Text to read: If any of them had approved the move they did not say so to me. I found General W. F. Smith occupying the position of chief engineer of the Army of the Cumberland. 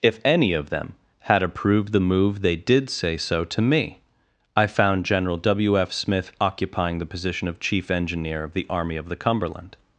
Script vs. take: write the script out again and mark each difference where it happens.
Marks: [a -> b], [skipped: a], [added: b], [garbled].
If any of them had approved the move they did [skipped: not] say so to me. I found General W. F. Smith occupying the position of chief engineer of the Army of the Cumberland.